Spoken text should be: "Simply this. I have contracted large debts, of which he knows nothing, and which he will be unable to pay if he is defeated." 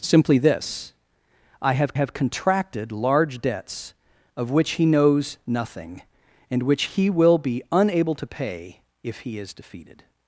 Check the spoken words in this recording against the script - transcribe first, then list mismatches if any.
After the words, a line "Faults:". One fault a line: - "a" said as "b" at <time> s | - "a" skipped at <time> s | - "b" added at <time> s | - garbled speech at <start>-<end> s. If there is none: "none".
"Simply this. I have have contracted large debts, of which he knows nothing, and which he will be unable to pay if he is defeated."
Faults:
- "have" added at 1.9 s